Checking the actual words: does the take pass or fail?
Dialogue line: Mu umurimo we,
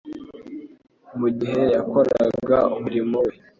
fail